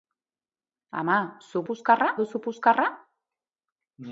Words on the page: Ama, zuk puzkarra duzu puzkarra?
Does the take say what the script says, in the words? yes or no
yes